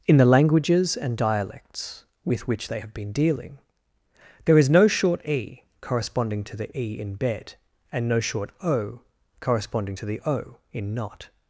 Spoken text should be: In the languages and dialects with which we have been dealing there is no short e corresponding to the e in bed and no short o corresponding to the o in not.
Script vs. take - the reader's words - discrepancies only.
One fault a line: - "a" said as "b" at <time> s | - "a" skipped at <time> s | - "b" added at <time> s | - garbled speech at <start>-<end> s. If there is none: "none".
- "we" said as "they" at 2.7 s